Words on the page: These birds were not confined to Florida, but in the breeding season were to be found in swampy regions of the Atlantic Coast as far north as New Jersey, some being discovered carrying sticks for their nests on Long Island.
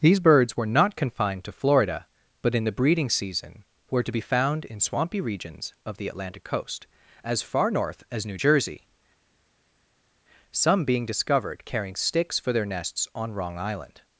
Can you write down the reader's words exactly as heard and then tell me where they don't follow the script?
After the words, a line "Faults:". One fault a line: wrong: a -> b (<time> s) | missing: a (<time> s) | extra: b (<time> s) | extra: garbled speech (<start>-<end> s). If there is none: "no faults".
These birds were not confined to Florida, but in the breeding season were to be found in swampy regions of the Atlantic Coast as far north as New Jersey, some being discovered carrying sticks for their nests on Wrong Island.
Faults:
wrong: Long -> Wrong (13.3 s)